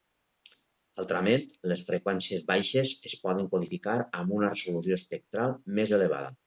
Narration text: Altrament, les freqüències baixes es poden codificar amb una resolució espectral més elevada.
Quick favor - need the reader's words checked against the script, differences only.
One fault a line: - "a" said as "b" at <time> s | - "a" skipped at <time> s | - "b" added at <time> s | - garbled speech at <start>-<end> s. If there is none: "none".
none